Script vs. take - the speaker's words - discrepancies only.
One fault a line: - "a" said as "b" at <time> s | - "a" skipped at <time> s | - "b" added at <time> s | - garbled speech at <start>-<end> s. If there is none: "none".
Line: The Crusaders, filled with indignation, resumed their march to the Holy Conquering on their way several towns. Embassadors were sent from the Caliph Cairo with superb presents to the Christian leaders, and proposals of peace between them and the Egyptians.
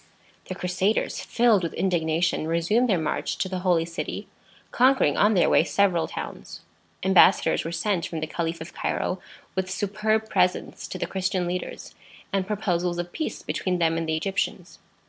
- "City" added at 3.9 s
- "of" added at 8.6 s